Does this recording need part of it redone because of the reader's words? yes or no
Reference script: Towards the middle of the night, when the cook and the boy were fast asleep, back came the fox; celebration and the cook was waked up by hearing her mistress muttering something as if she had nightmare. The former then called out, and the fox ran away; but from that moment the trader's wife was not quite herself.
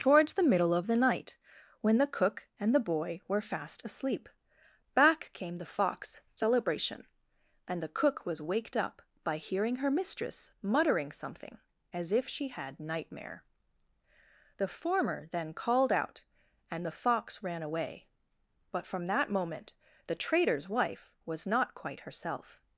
no